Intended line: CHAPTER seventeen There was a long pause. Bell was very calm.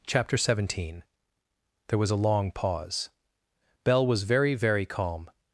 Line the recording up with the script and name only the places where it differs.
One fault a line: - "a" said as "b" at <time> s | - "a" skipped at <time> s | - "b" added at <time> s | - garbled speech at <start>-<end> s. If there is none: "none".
- "very" added at 4.5 s